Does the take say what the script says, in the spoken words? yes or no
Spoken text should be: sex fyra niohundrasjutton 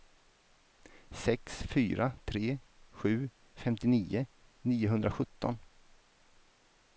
no